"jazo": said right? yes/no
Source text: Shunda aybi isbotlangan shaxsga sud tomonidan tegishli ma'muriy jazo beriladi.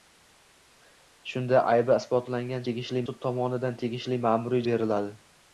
no